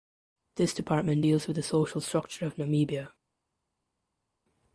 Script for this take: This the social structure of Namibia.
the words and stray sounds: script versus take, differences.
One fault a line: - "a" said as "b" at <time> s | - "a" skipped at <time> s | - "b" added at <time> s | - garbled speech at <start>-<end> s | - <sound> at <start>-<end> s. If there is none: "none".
- "department deals with" added at 0.7 s